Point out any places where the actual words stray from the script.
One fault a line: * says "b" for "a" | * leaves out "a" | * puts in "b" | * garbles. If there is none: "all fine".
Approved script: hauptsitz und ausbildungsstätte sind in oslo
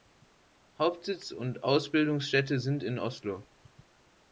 all fine